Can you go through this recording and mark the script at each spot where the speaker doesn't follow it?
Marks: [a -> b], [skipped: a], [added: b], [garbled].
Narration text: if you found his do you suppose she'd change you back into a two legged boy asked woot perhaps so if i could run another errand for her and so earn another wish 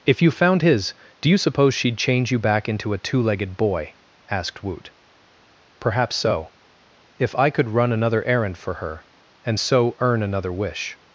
if you found his do you suppose she'd change you back into a two legged boy asked woot perhaps so if i could run another errand for her and so earn another wish